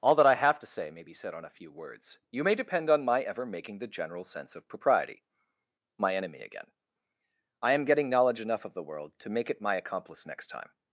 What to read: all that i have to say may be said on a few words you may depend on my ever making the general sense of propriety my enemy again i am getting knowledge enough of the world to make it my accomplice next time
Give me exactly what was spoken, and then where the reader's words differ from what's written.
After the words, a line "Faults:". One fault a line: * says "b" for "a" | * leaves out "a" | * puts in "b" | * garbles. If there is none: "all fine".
all that i have to say may be said on a few words you may depend on my ever making the general sense of propriety my enemy again i am getting knowledge enough of the world to make it my accomplice next time
Faults:
all fine